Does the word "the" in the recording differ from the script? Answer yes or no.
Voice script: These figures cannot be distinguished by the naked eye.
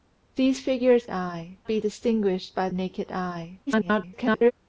yes